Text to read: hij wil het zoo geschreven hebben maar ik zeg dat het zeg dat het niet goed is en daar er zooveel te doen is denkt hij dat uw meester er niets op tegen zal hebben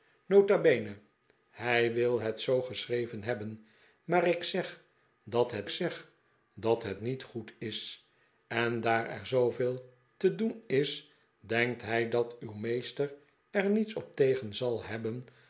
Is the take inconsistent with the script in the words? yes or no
no